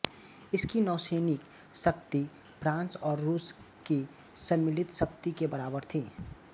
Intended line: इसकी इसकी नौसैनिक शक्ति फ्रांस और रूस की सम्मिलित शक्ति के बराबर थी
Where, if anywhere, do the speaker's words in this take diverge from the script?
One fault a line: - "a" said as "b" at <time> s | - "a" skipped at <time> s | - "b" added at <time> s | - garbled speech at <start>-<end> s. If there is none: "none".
- "इसकी" skipped at 0.8 s